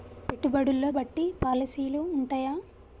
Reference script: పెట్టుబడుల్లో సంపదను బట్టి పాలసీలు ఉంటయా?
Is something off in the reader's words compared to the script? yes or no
yes